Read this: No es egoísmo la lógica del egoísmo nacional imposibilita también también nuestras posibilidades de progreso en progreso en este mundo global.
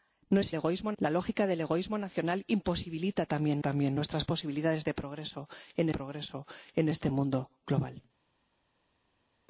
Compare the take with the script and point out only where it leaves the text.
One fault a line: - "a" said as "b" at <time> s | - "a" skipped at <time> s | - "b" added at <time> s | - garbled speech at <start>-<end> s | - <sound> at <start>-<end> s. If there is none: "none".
none